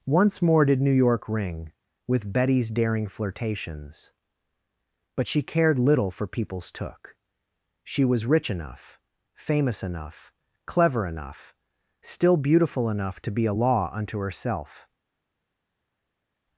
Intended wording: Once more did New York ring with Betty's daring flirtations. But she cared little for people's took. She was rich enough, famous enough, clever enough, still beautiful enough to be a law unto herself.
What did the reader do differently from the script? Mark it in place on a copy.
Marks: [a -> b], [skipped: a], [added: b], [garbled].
Once more did New York ring with Betty's daring flirtations. But she cared little for people's took. She was rich enough, famous enough, clever enough, still beautiful enough to be a law unto herself.